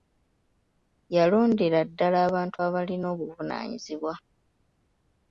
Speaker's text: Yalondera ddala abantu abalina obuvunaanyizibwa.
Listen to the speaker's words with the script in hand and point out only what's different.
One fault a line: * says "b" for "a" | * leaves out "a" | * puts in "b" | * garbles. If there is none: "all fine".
all fine